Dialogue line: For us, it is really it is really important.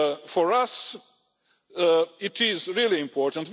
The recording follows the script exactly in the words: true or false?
false